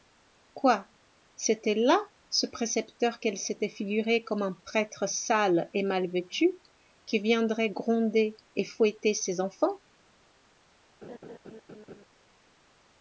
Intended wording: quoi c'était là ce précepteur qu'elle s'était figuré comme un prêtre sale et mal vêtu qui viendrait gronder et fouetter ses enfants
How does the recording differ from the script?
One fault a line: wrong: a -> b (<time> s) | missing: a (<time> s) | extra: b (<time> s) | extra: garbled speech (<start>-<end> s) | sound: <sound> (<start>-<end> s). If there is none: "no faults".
sound: laugh (11.0-12.0 s)